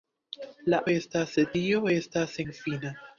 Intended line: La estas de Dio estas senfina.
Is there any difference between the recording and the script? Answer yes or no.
no